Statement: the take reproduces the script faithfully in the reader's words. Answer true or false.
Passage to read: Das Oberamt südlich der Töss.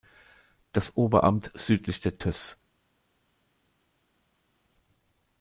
true